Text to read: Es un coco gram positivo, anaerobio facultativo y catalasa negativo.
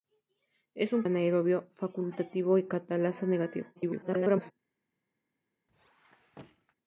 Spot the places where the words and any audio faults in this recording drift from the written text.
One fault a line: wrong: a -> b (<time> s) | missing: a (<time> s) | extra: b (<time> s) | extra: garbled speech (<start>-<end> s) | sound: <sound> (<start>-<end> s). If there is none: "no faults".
missing: coco gram positivo (1.0 s)
extra: garbled speech (3.8-4.5 s)
sound: squeak (5.7-6.8 s)